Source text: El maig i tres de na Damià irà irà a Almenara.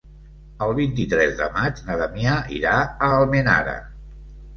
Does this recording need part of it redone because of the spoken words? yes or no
yes